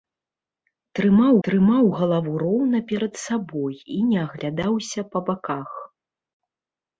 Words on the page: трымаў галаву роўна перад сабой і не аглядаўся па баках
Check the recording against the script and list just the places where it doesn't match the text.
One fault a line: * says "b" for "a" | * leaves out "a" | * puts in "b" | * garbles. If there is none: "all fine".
* puts in "трымаў"